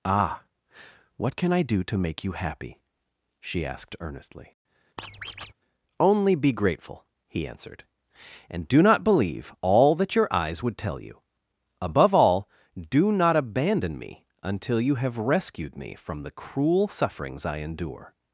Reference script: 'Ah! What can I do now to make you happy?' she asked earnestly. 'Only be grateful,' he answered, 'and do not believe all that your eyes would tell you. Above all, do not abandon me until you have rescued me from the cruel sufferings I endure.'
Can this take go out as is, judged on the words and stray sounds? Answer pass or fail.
fail